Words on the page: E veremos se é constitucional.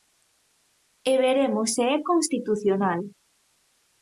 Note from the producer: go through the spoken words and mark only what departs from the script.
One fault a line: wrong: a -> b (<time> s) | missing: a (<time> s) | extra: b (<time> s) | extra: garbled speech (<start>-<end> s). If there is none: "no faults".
no faults